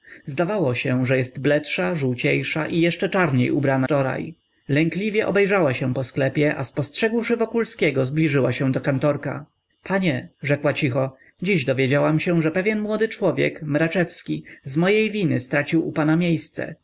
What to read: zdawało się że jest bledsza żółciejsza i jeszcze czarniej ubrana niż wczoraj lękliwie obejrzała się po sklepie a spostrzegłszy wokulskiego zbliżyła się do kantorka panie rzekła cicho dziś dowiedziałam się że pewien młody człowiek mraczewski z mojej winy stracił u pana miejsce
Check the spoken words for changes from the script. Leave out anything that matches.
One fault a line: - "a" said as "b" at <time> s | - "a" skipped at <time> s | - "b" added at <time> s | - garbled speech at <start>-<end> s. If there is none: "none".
- "niż" skipped at 3.9 s